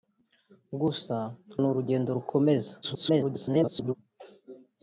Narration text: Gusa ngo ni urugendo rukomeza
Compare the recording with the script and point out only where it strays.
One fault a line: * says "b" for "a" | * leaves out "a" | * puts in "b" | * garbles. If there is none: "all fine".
* leaves out "ngo"
* garbles